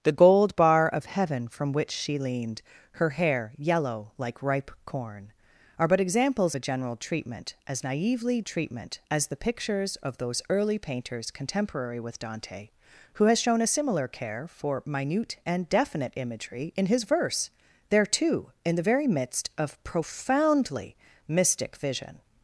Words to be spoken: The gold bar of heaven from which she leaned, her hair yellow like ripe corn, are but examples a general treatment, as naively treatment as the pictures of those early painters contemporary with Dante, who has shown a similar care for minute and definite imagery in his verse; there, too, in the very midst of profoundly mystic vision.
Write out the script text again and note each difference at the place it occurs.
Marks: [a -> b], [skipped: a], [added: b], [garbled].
The gold bar of heaven from which she leaned, her hair yellow like ripe corn, are but examples a general treatment, as naively treatment as the pictures of those early painters contemporary with Dante, who has shown a similar care for minute and definite imagery in his verse; there, too, in the very midst of profoundly mystic vision.